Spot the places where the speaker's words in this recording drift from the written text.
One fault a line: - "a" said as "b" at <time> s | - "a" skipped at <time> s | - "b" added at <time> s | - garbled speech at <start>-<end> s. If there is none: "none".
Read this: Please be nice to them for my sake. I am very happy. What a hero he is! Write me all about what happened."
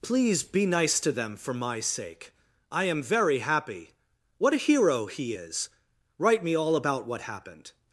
none